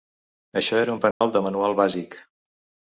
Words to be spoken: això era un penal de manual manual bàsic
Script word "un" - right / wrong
right